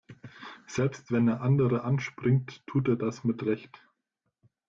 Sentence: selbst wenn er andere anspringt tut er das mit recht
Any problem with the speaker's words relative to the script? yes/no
no